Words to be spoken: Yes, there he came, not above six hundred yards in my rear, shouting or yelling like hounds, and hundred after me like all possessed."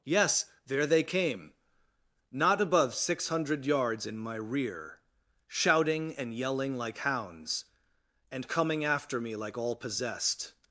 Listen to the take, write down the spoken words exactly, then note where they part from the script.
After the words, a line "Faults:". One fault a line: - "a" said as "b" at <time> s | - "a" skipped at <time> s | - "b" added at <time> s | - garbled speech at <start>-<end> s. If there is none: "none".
Yes, there they came, not above six hundred yards in my rear, shouting and yelling like hounds, and coming after me like all possessed."
Faults:
- "he" said as "they" at 0.9 s
- "or" said as "and" at 6.2 s
- "hundred" said as "coming" at 8.5 s